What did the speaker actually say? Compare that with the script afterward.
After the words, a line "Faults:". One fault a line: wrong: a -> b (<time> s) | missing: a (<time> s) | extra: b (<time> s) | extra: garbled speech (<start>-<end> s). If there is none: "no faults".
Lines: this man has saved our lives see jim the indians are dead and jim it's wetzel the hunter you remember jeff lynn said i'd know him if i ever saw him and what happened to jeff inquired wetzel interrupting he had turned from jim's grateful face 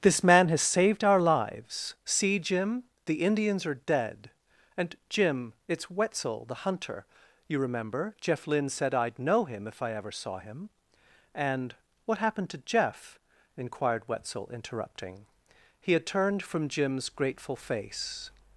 this man has saved our lives see jim the indians are dead and jim it's wetzel the hunter you remember jeff lynn said i'd know him if i ever saw him and what happened to jeff inquired wetzel interrupting he had turned from jim's grateful face
Faults:
no faults